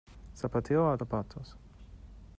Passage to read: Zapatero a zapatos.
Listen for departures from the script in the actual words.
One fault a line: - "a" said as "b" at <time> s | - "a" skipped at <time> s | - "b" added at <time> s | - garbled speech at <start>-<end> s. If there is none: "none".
none